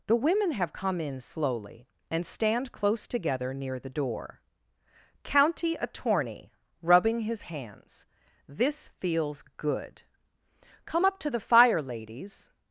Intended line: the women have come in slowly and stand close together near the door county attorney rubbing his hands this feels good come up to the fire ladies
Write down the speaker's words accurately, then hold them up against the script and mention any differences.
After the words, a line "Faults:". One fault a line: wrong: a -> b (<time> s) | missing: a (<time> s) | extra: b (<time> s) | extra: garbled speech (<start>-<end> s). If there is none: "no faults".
the women have come in slowly and stand close together near the door county attorney rubbing his hands this feels good come up to the fire ladies
Faults:
no faults